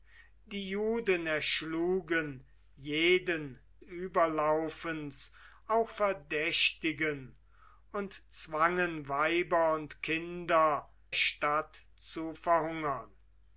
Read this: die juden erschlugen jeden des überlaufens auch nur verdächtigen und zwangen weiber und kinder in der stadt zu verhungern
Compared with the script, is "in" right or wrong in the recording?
wrong